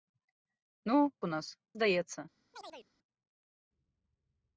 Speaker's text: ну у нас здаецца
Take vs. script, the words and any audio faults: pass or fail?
fail